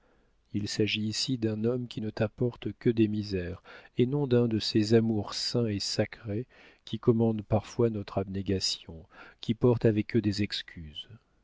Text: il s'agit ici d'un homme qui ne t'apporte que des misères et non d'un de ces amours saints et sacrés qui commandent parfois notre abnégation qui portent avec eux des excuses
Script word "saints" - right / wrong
right